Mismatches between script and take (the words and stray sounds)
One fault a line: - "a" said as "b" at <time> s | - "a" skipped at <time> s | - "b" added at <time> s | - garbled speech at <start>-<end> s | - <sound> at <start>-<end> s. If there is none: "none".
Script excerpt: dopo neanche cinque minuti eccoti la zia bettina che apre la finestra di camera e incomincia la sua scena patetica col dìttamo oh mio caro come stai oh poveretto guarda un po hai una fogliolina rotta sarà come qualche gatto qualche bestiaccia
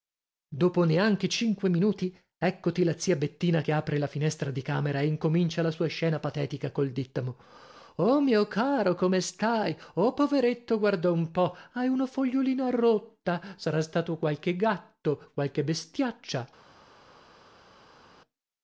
- "come" said as "stato" at 13.8 s